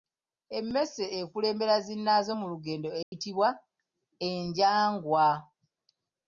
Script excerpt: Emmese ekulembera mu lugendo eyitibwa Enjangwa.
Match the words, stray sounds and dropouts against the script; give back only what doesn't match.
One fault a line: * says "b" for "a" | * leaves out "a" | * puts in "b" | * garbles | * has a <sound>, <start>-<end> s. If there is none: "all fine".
* puts in "zinnaazo"
* has a dropout, 3.0-3.1 s